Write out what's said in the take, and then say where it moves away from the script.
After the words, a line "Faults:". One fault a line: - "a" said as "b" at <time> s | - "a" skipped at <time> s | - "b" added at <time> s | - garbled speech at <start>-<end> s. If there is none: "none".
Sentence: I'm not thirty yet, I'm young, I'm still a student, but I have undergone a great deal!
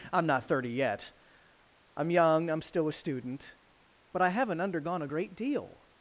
I'm not thirty yet, I'm young, I'm still a student, but I haven't undergone a great deal!
Faults:
- "have" said as "haven't" at 4.3 s